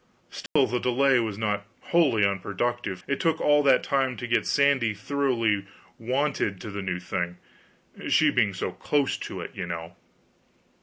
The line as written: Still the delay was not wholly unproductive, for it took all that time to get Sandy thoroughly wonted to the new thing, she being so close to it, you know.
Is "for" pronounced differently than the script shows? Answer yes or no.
yes